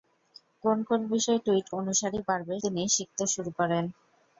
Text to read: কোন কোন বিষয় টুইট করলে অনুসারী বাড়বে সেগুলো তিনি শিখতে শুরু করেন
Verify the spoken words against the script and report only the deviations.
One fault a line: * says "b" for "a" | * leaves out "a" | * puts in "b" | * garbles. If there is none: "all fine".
* leaves out "করলে"
* leaves out "সেগুলো"